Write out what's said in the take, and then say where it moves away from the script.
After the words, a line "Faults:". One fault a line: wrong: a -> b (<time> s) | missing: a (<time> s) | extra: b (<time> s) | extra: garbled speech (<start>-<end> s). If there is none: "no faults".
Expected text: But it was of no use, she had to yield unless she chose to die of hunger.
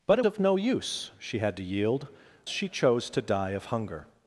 But it of no use, she had to yield she chose to die of hunger.
Faults:
missing: was (0.2 s)
missing: unless (2.1 s)